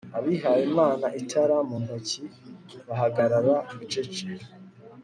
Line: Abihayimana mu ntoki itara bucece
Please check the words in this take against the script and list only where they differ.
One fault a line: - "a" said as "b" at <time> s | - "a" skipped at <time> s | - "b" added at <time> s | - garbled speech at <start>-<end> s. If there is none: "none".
- "itara" added at 1.2 s
- "itara" said as "bahagarara" at 2.9 s